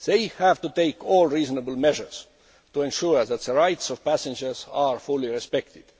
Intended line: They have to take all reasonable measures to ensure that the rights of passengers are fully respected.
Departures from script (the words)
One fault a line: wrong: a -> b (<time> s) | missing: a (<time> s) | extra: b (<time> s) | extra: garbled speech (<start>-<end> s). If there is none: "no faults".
no faults